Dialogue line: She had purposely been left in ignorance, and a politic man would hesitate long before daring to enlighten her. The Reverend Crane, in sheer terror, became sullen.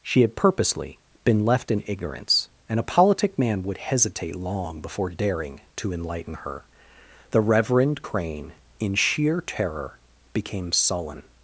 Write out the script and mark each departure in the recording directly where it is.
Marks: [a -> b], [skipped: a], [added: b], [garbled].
She had purposely been left in ignorance, and a politic man would hesitate long before daring to enlighten her. The Reverend Crane, in sheer terror, became sullen.